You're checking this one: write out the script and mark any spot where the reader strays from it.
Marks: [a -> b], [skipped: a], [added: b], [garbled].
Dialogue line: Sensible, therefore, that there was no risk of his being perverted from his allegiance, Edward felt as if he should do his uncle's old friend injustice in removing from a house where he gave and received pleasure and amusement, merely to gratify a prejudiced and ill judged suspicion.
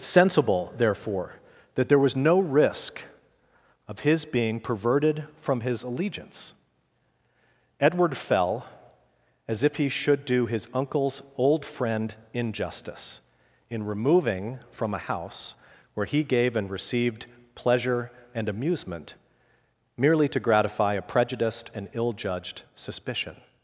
Sensible, therefore, that there was no risk of his being perverted from his allegiance, Edward [felt -> fell] as if he should do his uncle's old friend injustice in removing from a house where he gave and received pleasure and amusement, merely to gratify a prejudiced and ill judged suspicion.